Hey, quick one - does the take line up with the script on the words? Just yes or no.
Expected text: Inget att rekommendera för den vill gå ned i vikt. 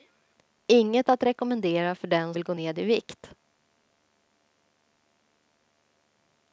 yes